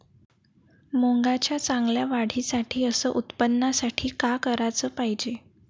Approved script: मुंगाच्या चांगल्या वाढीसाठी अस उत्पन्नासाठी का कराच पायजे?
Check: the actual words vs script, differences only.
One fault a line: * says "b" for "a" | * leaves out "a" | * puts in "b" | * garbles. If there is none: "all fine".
all fine